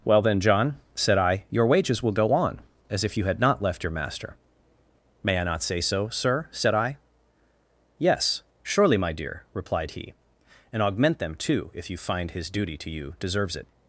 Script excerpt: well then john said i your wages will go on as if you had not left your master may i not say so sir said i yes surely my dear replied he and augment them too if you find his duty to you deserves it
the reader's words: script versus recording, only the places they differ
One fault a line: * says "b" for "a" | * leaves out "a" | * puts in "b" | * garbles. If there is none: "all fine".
all fine